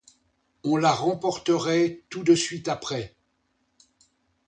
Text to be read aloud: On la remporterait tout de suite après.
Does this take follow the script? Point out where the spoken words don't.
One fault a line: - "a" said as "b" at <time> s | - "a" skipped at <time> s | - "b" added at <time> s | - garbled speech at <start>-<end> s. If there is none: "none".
none